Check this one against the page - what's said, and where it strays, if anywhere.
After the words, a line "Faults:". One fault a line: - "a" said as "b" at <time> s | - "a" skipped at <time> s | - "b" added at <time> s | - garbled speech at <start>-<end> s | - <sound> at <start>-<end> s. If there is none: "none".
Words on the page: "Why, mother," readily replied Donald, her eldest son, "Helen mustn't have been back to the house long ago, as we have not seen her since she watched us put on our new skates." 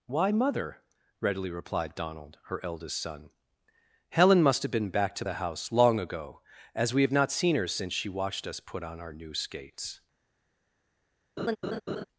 "Why, mother," readily replied Donald, her eldest son, "Helen must have been back to the house long ago, as we have not seen her since she watched us put on our new skates."
Faults:
- "mustn't" said as "must" at 4.4 s
- laugh at 11.4-12.0 s